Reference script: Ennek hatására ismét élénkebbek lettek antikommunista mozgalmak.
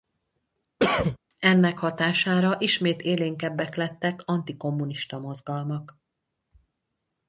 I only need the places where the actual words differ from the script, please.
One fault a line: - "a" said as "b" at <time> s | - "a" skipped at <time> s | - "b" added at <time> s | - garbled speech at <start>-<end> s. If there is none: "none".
none